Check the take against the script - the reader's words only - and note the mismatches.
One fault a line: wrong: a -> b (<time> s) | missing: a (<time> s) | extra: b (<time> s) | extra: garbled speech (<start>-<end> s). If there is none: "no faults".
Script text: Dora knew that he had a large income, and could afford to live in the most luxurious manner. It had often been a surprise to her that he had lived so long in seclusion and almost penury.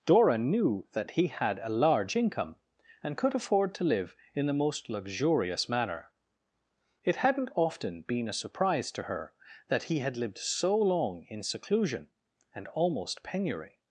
wrong: had -> hadn't (7.2 s)